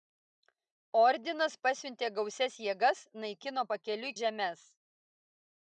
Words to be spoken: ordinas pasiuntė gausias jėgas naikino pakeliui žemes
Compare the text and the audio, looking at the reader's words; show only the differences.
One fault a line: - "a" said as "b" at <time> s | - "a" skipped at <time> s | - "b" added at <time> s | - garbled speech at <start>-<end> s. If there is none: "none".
none